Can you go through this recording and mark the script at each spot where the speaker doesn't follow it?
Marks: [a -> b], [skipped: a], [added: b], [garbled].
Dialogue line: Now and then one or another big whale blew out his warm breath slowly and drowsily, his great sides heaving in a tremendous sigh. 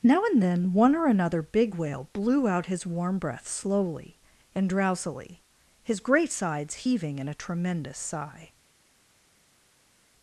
Now and then one or another big whale blew out his warm breath slowly and drowsily, his great sides heaving in a tremendous sigh.